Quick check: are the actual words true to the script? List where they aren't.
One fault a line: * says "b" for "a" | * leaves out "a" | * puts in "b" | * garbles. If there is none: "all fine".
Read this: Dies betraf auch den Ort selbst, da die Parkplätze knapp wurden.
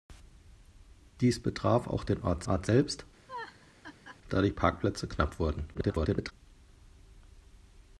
* puts in "Ort"
* garbles